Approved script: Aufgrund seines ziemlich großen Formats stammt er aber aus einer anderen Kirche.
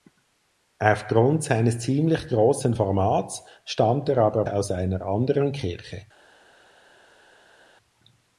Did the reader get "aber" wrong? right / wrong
right